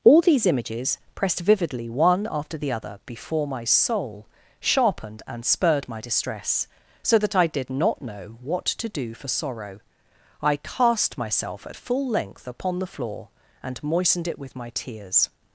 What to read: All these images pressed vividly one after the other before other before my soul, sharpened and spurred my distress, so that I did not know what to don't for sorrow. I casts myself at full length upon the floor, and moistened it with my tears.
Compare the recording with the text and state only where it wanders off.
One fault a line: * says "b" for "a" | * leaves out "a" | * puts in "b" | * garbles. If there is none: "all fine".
* leaves out "other before"
* says "do" for "don't"
* says "cast" for "casts"